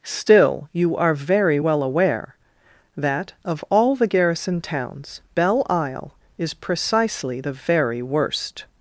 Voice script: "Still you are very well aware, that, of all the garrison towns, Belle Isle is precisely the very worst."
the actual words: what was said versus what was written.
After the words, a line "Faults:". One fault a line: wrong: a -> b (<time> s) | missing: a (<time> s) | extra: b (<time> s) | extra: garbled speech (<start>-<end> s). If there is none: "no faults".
"Still you are very well aware, that, of all the garrison towns, Belle Isle is precisely the very worst."
Faults:
no faults